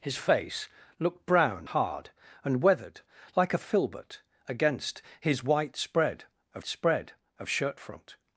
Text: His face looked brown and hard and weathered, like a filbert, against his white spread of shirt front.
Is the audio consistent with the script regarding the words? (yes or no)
no